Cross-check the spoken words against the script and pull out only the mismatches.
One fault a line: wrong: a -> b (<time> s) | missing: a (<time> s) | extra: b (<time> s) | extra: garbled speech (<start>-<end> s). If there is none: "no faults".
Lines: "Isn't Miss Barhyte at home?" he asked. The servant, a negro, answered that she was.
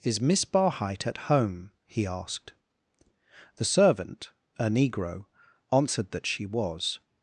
wrong: Isn't -> Is (0.0 s)